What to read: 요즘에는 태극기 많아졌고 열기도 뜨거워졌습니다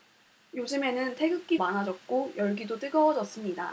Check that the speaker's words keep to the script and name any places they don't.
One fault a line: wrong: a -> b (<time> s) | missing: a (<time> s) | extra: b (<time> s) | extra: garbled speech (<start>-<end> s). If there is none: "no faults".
no faults